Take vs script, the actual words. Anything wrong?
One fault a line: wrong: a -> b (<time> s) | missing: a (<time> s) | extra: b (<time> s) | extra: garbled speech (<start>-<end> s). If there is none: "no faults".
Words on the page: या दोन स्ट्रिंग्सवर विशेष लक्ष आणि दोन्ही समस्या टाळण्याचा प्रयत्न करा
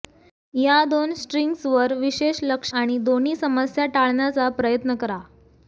no faults